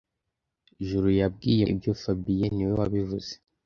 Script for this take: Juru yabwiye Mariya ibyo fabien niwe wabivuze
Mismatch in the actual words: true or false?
true